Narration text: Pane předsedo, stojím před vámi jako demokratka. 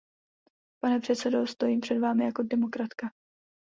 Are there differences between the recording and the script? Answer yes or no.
no